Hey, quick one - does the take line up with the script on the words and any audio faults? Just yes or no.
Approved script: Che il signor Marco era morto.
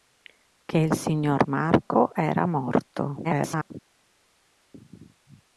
no